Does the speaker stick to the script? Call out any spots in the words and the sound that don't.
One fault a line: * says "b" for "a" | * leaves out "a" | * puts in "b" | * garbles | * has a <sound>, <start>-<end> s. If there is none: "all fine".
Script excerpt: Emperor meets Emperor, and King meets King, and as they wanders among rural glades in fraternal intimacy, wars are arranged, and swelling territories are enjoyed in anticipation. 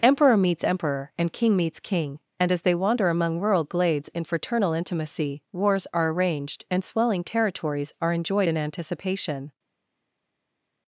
* says "wander" for "wanders"